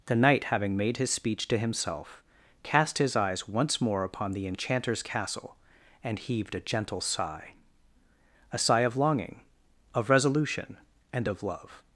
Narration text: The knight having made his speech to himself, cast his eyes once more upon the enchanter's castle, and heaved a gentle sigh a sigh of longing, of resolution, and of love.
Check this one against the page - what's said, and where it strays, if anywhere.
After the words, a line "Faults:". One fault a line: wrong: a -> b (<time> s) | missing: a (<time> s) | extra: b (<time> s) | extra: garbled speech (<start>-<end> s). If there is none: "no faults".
The knight having made his speech to himself, cast his eyes once more upon the enchanter's castle, and heaved a gentle sigh a sigh of longing, of resolution, and of love.
Faults:
no faults